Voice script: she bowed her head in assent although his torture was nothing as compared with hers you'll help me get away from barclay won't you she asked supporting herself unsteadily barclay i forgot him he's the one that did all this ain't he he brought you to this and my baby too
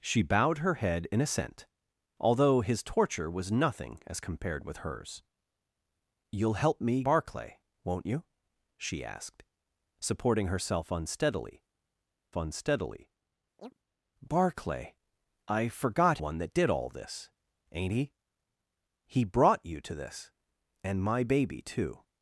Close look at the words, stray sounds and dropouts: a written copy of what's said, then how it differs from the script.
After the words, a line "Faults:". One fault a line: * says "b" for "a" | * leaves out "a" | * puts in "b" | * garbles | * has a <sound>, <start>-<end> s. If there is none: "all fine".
she bowed her head in assent although his torture was nothing as compared with hers you'll help me barclay won't you she asked supporting herself unsteadily unsteadily barclay i forgot one that did all this ain't he he brought you to this and my baby too
Faults:
* leaves out "get away from"
* puts in "unsteadily"
* has a chirp, 13.6-13.8 s
* leaves out "him he's the"